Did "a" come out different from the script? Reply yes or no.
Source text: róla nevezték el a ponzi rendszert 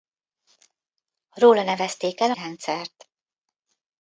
yes